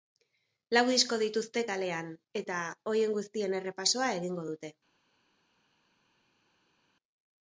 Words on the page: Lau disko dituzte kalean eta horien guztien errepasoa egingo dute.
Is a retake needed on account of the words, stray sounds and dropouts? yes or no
no